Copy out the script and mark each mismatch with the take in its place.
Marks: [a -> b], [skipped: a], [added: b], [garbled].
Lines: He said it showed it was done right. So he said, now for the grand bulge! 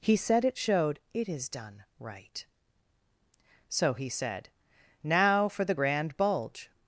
He said it showed it [was -> is] done right. So he said, now for the grand bulge!